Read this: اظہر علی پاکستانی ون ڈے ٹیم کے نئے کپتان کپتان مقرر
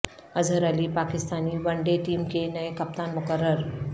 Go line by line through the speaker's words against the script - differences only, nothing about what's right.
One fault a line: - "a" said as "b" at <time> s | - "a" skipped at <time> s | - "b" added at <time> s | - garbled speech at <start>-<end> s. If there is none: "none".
- "کپتان" skipped at 3.1 s